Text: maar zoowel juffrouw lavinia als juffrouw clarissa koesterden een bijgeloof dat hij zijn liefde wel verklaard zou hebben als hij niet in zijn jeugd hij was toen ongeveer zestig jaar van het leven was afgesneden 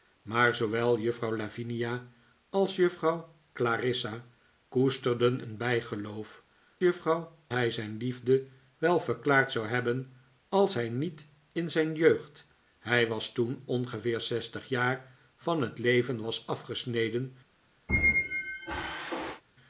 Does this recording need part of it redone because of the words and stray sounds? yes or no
yes